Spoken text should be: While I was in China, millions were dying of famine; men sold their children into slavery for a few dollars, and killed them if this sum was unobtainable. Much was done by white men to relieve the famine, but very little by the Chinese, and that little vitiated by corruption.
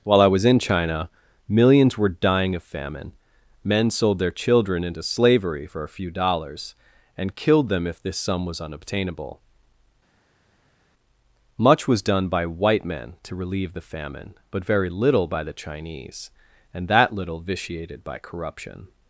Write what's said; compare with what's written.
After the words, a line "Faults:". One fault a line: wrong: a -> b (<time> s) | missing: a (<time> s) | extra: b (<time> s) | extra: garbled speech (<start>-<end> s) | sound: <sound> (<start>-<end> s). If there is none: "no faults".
While I was in China, millions were dying of famine; men sold their children into slavery for a few dollars, and killed them if this sum was unobtainable. Much was done by white men to relieve the famine, but very little by the Chinese, and that little vitiated by corruption.
Faults:
no faults